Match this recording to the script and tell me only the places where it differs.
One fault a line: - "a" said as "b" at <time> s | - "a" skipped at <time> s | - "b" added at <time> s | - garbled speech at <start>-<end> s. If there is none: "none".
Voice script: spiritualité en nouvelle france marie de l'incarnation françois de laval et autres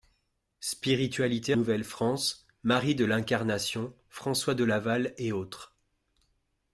- "en" skipped at 1.5 s